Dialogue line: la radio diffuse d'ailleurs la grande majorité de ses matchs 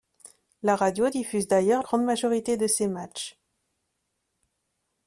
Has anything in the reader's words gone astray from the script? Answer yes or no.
yes